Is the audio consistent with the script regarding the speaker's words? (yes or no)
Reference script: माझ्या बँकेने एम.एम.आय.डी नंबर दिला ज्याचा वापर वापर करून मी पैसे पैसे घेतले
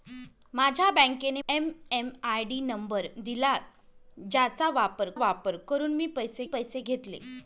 yes